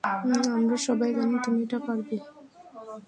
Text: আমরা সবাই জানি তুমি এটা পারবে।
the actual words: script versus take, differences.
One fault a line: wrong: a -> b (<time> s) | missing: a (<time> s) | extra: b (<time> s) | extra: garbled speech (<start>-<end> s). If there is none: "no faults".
no faults